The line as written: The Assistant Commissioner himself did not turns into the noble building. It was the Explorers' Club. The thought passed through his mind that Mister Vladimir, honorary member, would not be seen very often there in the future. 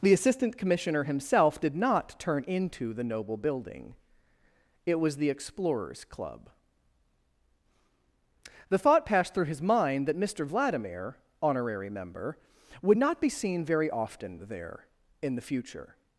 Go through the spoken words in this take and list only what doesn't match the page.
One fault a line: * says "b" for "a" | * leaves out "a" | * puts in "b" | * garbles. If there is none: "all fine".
* says "turn" for "turns"